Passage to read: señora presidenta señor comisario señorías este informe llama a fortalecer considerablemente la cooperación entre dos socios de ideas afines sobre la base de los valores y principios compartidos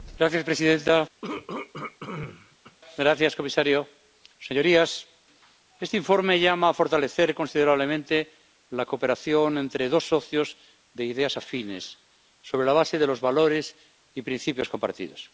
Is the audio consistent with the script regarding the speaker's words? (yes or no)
yes